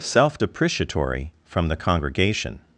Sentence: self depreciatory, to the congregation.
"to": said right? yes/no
no